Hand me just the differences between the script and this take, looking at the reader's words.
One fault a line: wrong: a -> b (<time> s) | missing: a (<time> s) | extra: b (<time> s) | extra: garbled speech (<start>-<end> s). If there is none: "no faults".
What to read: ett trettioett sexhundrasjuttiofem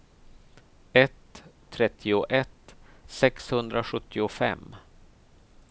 no faults